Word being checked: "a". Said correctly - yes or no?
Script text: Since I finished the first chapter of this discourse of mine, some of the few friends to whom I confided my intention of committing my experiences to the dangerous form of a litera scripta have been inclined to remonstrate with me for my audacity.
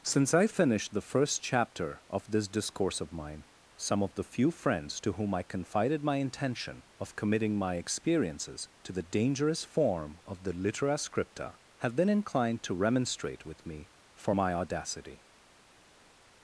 no